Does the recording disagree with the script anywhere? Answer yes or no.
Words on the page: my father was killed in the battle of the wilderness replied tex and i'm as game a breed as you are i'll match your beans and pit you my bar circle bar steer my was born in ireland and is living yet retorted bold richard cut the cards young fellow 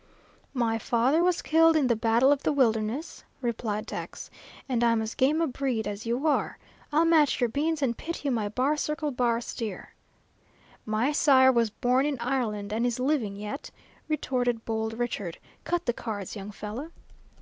yes